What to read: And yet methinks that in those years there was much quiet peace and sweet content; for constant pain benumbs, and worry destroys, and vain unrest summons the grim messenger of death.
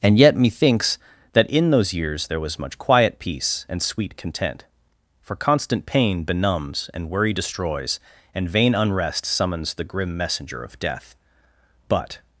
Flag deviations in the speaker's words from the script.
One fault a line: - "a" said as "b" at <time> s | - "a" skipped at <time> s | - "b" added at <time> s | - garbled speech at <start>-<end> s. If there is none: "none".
- "But" added at 11.9 s